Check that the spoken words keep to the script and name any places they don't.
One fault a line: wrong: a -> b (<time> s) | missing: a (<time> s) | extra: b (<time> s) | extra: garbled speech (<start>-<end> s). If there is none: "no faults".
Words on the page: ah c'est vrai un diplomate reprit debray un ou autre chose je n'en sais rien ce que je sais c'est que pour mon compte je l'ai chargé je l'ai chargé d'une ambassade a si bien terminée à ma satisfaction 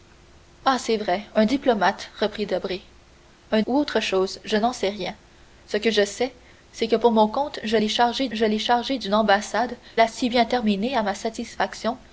no faults